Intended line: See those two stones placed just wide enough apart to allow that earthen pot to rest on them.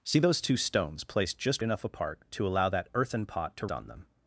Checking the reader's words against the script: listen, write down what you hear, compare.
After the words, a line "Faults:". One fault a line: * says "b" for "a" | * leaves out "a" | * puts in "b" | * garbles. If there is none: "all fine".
See those two stones placed just enough apart to allow that earthen pot to on them.
Faults:
* leaves out "wide"
* leaves out "rest"